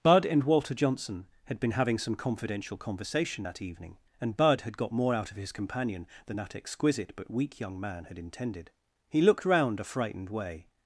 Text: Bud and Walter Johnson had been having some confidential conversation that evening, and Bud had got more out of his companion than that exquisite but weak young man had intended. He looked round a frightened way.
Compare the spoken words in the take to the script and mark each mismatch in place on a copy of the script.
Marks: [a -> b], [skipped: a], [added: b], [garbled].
Bud and Walter Johnson had been having some confidential conversation that evening, and Bud had got more out of his companion than that exquisite but weak young man had intended. He looked round a frightened way.